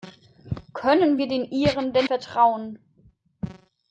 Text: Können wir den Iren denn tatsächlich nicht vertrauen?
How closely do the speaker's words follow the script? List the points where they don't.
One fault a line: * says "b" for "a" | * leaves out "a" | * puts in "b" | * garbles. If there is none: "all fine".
* leaves out "tatsächlich nicht"